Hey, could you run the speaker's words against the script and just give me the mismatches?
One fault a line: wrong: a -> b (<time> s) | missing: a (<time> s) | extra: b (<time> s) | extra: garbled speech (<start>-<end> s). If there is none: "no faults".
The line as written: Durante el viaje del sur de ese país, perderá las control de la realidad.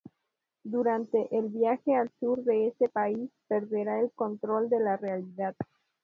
wrong: del -> al (1.9 s)
wrong: las -> el (4.0 s)